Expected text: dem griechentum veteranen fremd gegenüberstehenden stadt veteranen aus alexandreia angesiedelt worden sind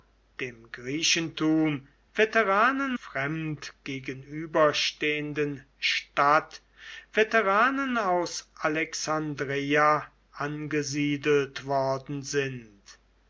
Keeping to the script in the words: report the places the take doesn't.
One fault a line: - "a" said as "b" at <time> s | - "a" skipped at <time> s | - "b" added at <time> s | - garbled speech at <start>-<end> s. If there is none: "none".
none